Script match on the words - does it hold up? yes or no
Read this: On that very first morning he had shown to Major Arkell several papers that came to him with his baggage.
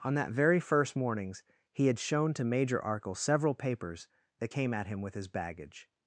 no